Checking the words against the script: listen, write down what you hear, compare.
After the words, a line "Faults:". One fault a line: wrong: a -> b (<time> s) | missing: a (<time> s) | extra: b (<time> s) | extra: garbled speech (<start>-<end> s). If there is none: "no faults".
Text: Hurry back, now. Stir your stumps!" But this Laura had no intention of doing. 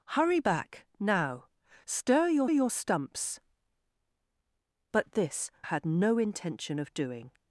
Hurry back, now. Stir your your stumps!" But this Had no intention of doing.
Faults:
extra: your (2.5 s)
missing: Laura (5.5 s)